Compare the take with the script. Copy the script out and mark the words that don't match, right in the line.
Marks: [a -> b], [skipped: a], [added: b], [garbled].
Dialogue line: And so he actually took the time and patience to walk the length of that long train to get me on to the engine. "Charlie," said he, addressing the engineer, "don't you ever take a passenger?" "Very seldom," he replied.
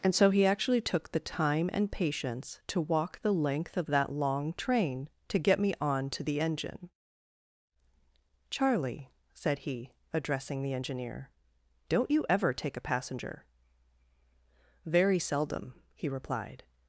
And so he actually took the time and patience to walk the length of that long train to get me on to the engine. "Charlie," said he, addressing the engineer, "don't you ever take a passenger?" "Very seldom," he replied.